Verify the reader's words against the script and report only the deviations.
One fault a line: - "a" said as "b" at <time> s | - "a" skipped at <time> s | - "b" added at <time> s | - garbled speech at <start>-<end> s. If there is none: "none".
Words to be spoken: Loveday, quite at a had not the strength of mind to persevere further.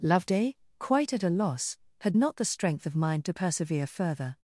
- "loss" added at 1.3 s